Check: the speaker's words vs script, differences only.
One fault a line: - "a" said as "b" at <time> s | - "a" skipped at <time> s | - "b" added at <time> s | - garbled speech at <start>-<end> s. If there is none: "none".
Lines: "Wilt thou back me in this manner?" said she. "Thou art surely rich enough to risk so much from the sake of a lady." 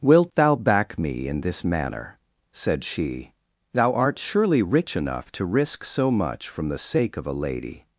none